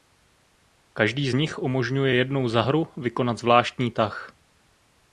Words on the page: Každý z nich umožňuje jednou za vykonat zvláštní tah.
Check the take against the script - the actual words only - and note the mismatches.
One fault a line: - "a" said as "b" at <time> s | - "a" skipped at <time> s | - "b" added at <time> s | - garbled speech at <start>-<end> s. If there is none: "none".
- "hru" added at 2.6 s